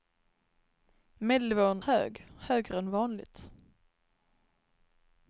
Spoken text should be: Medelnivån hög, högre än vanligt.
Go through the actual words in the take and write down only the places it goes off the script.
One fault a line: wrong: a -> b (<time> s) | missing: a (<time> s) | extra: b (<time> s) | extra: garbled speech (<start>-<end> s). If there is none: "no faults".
no faults